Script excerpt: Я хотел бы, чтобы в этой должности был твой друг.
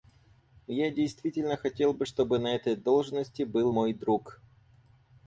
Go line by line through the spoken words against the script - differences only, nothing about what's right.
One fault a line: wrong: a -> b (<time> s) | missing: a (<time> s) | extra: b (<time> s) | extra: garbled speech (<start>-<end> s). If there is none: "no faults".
extra: действительно (0.9 s)
wrong: в -> на (2.4 s)
wrong: твой -> мой (3.7 s)